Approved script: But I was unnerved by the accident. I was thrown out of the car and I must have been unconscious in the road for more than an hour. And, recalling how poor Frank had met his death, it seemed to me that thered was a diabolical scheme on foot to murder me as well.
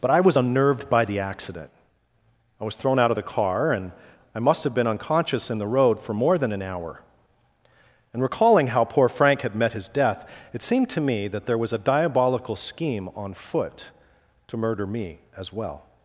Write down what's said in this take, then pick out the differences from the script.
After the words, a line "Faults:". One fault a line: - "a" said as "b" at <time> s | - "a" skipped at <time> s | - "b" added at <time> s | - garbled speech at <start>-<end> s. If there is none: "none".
But I was unnerved by the accident. I was thrown out of the car and I must have been unconscious in the road for more than an hour. And, recalling how poor Frank had met his death, it seemed to me that there was a diabolical scheme on foot to murder me as well.
Faults:
- "thered" said as "there" at 11.5 s